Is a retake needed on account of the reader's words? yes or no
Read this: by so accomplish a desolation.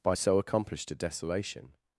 yes